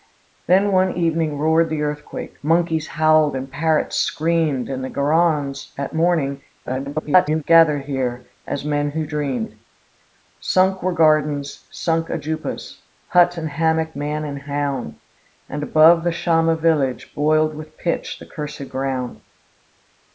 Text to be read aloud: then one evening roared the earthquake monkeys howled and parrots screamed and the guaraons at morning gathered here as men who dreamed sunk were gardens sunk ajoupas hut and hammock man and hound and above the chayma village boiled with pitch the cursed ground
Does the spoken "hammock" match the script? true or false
true